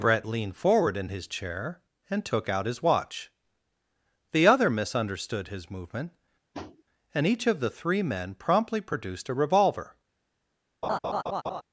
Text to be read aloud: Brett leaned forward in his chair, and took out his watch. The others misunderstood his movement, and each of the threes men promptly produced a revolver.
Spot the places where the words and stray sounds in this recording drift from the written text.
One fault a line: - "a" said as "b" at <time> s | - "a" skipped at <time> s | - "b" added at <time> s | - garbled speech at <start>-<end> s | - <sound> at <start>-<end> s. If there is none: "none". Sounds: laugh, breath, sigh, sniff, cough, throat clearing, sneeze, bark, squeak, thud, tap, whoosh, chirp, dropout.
- "others" said as "other" at 4.5 s
- tap at 6.5-6.8 s
- "threes" said as "three" at 7.7 s
- laugh at 10.8-11.6 s